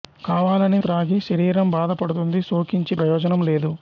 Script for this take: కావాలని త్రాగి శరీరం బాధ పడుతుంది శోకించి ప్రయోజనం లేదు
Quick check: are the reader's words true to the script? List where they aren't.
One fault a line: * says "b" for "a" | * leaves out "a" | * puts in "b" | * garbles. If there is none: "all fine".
all fine